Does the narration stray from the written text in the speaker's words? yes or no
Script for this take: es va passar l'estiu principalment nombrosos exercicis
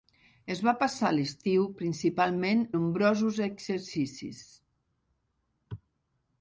no